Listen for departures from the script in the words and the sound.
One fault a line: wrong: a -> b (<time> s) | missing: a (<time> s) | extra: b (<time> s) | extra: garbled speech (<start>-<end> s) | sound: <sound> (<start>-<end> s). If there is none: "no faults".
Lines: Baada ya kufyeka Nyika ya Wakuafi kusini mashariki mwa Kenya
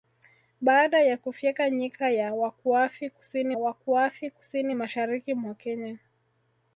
extra: Wakuafi kusini (3.6 s)